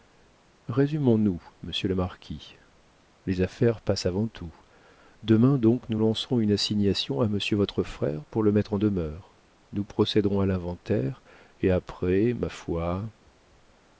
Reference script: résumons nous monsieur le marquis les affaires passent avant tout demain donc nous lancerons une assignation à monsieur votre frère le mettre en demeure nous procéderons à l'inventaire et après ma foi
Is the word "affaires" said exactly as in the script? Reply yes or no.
yes